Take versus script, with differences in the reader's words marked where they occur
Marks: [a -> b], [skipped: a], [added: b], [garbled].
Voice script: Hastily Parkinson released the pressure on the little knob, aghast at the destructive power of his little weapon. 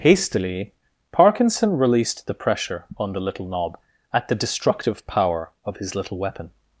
Hastily Parkinson released the pressure on the little knob, [skipped: aghast] at the destructive power of his little weapon.